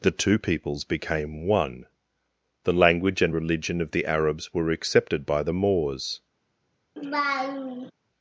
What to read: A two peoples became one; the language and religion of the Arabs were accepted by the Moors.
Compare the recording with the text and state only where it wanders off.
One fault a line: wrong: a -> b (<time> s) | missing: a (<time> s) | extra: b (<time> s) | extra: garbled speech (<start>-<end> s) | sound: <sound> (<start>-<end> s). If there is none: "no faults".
wrong: A -> The (0.0 s)
sound: laugh (7.0-7.9 s)